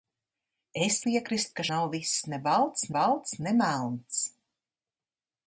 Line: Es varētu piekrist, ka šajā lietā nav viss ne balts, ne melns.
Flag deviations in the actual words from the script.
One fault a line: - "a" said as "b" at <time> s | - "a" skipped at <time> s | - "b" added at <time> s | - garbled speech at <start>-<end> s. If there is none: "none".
- "varētu" skipped at 0.9 s
- "šajā lietā" skipped at 1.7 s
- "balts" added at 3.0 s